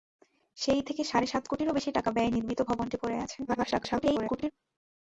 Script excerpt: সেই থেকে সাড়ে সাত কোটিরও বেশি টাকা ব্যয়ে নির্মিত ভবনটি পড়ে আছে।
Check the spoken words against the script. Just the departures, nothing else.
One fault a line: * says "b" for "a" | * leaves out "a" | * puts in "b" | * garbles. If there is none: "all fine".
* garbles